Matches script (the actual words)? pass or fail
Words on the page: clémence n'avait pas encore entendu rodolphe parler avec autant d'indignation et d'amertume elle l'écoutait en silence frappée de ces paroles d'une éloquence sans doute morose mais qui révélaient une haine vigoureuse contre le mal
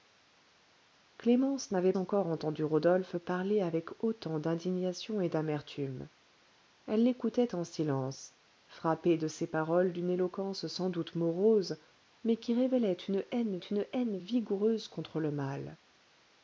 fail